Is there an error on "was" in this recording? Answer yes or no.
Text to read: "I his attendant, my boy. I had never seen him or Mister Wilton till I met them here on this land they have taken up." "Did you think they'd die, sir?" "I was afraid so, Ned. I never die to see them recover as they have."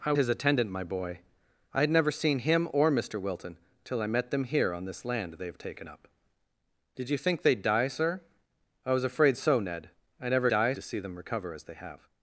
no